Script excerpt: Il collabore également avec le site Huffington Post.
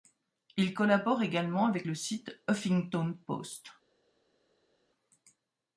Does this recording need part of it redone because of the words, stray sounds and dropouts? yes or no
no